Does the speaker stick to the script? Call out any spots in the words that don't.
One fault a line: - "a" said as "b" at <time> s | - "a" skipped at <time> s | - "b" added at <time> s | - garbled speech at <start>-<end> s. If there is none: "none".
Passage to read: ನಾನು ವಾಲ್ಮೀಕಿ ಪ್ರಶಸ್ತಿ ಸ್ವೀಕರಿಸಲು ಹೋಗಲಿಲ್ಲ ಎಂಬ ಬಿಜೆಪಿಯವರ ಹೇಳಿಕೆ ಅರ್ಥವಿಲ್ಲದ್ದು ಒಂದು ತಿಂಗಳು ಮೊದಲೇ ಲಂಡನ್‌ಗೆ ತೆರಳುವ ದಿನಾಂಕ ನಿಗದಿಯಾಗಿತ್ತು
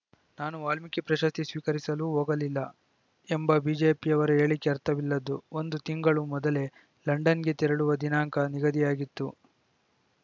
none